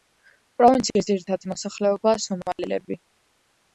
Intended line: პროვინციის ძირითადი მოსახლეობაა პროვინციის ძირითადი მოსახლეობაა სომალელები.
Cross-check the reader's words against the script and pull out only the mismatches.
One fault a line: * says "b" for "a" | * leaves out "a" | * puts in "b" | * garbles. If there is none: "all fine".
* leaves out "პროვინციის ძირითადი მოსახლეობაა"